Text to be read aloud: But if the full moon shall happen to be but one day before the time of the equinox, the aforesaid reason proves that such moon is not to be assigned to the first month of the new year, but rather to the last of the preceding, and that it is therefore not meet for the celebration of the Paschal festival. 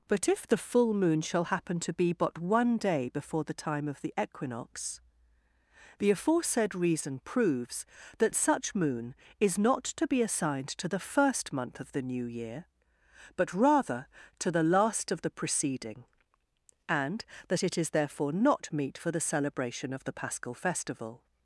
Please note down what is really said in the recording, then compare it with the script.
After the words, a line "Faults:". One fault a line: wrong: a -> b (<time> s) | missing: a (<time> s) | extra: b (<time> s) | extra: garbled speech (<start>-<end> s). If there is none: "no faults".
But if the full moon shall happen to be but one day before the time of the equinox, the aforesaid reason proves that such moon is not to be assigned to the first month of the new year, but rather to the last of the preceding, and that it is therefore not meet for the celebration of the Paschal festival.
Faults:
no faults